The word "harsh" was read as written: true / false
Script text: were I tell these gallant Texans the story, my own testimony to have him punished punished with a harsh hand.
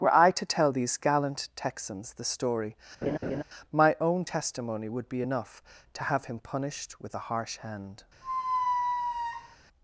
true